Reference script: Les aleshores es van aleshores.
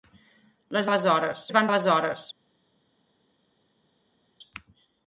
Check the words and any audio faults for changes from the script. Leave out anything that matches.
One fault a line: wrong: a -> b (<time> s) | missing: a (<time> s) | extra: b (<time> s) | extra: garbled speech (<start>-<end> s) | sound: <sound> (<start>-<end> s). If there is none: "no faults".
no faults